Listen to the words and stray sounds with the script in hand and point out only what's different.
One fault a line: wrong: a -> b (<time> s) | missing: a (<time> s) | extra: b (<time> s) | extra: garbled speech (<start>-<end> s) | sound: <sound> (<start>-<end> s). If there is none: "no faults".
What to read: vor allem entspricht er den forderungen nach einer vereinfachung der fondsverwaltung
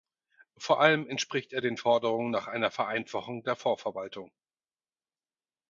no faults